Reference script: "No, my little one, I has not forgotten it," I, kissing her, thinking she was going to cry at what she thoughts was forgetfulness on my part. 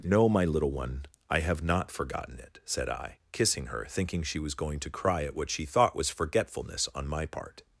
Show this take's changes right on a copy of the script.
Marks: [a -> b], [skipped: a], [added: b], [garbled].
"No, my little one, I [has -> have] not forgotten it," [added: said] I, kissing her, thinking she was going to cry at what she [thoughts -> thought] was forgetfulness on my part.